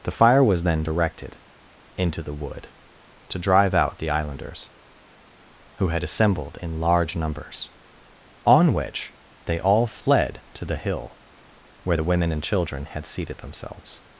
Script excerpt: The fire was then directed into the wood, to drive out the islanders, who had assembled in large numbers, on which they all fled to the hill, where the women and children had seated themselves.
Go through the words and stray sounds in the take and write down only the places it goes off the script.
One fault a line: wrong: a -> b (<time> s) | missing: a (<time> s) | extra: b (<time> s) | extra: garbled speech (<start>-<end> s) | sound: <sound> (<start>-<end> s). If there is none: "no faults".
no faults